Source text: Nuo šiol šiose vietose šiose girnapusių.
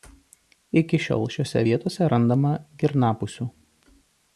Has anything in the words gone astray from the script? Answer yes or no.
yes